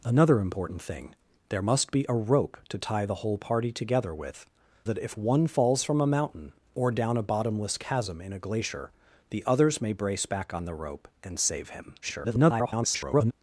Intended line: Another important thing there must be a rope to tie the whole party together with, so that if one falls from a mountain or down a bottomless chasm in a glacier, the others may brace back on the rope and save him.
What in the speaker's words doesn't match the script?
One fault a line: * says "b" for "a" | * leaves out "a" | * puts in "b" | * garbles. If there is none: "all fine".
* leaves out "so"
* garbles